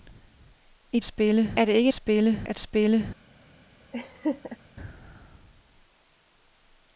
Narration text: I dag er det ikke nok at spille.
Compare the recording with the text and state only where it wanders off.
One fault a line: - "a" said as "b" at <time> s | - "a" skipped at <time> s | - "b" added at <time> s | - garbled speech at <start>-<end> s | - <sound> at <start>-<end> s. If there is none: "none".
- "dag" said as "spille" at 1.0 s
- "nok" said as "spille" at 1.9 s
- laugh at 3.9-4.6 s